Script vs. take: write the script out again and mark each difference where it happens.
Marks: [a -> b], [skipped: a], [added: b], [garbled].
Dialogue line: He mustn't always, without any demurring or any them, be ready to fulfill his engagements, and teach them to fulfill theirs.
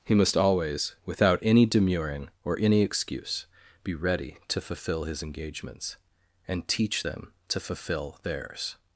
He [mustn't -> must] always, without any demurring or any [them, -> excuse] be ready to fulfill his engagements, and teach them to fulfill theirs.